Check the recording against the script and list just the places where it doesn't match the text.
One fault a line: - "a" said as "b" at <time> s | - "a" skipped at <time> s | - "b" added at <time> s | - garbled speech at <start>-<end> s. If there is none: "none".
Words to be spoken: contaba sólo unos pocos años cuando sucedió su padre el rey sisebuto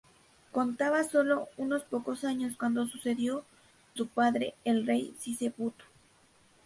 none